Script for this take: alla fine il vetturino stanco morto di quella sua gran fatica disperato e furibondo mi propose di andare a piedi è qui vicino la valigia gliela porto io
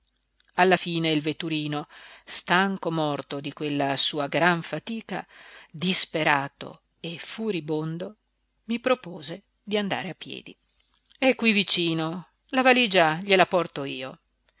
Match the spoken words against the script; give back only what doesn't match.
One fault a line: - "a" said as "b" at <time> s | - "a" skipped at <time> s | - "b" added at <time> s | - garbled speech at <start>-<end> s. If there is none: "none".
none